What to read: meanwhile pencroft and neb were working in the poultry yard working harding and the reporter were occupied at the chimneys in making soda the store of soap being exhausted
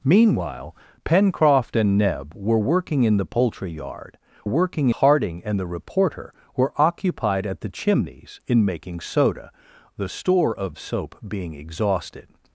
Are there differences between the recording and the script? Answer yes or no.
no